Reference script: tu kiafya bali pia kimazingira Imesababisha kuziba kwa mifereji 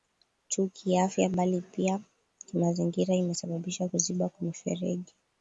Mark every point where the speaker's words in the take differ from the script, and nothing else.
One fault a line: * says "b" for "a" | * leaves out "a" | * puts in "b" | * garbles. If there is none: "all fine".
all fine